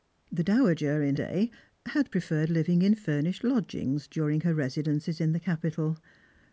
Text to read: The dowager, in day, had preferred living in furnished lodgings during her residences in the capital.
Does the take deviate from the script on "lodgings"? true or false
false